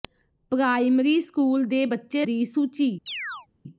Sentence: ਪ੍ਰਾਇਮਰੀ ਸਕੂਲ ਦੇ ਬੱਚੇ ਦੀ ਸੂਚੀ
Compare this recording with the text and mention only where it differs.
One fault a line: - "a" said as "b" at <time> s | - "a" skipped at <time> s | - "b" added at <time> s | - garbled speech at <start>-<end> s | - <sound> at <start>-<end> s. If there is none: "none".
- chirp at 3.1-3.5 s